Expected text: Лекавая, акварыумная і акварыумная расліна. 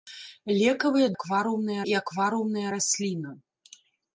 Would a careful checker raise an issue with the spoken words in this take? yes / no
no